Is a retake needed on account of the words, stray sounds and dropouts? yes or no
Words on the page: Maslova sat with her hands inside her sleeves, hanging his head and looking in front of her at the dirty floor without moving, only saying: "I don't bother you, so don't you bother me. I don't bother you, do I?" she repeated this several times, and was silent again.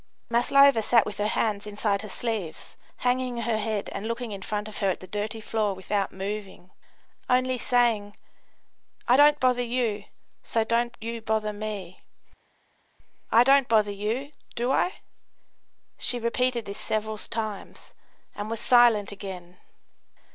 yes